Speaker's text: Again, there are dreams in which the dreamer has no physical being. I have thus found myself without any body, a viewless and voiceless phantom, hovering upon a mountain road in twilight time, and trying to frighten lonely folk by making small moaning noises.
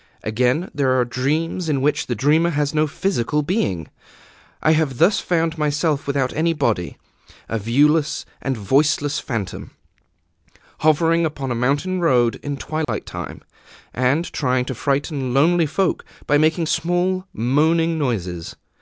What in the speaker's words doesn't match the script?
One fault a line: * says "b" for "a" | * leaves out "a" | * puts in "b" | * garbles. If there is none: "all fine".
all fine